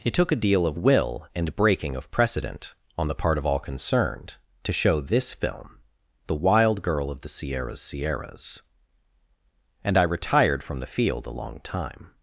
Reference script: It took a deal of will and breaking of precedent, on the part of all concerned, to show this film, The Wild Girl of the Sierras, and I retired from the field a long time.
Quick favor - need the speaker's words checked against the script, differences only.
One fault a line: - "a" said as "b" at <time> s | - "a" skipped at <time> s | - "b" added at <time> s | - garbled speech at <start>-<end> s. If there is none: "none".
- "Sierras" added at 7.8 s